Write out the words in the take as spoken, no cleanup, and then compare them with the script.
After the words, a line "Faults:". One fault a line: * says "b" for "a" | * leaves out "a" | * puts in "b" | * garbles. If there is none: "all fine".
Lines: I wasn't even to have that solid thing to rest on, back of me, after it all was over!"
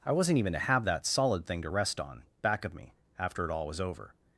I wasn't even to have that solid thing to rest on, back of me, after it all was over!"
Faults:
all fine